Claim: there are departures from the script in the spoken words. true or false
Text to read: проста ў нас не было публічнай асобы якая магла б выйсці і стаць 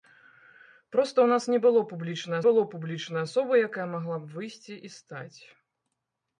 true